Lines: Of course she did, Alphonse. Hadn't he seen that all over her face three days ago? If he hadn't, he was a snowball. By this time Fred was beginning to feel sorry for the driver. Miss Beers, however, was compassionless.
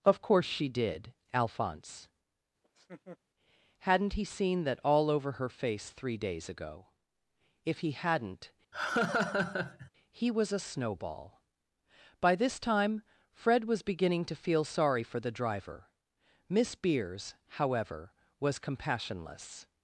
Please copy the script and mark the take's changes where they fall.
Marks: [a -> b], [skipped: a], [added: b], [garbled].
Of course she did, Alphonse. Hadn't he seen that all over her face three days ago? If he hadn't, he was a snowball. By this time Fred was beginning to feel sorry for the driver. Miss Beers, however, was compassionless.